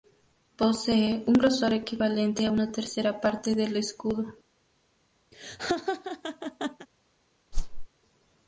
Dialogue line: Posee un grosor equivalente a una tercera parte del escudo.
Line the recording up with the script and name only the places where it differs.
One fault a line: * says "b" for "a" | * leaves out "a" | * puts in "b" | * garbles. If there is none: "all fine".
all fine